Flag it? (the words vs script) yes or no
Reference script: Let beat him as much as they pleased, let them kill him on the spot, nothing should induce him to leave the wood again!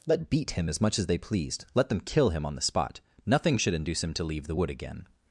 no